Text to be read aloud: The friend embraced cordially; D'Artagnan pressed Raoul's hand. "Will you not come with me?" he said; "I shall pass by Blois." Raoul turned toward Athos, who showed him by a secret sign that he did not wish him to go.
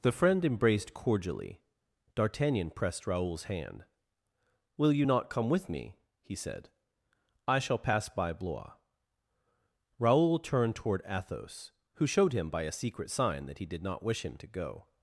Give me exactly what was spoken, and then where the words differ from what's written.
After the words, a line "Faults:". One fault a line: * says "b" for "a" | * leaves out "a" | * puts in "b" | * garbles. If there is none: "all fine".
The friend embraced cordially; D'Artagnan pressed Raoul's hand. "Will you not come with me?" he said; "I shall pass by Blois." Raoul turned toward Athos, who showed him by a secret sign that he did not wish him to go.
Faults:
all fine